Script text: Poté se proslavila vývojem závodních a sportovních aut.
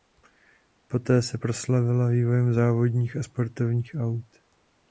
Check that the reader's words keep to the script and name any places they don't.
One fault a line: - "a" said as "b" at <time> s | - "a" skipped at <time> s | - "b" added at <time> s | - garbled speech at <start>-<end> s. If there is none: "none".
none